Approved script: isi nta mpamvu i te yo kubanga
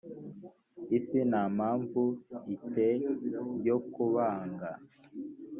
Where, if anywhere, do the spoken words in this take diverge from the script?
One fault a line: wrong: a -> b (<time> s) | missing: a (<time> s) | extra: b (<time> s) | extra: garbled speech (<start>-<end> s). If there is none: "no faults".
no faults